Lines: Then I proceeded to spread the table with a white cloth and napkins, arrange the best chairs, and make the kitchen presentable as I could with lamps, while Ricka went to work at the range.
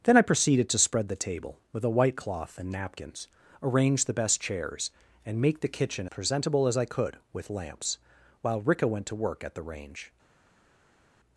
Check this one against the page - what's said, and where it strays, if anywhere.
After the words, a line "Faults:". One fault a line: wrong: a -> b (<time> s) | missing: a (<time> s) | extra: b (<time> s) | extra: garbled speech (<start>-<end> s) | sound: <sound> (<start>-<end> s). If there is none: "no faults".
Then I proceeded to spread the table with a white cloth and napkins, arrange the best chairs, and make the kitchen presentable as I could with lamps, while Ricka went to work at the range.
Faults:
no faults